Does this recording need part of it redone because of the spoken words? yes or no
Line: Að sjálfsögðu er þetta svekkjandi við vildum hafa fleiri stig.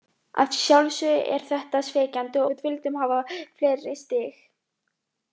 no